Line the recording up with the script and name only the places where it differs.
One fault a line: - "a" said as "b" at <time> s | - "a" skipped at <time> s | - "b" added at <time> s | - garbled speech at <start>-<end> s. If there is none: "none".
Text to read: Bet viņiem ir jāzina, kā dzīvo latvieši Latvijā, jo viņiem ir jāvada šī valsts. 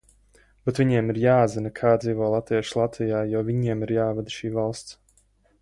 none